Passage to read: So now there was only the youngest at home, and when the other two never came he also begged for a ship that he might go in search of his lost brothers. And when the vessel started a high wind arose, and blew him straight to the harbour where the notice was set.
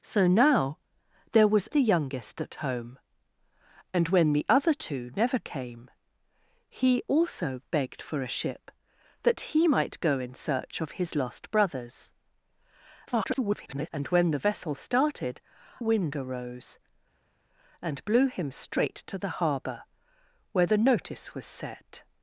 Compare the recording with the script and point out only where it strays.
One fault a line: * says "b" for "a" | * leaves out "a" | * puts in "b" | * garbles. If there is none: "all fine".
* leaves out "only"
* garbles
* leaves out "a high"